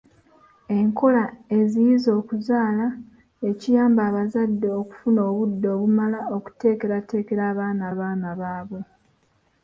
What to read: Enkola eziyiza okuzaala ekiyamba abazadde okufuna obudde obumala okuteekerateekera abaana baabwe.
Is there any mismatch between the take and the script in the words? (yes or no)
yes